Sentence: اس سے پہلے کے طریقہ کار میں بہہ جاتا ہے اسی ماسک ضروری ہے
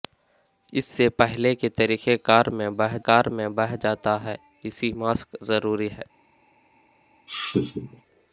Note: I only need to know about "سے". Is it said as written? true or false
true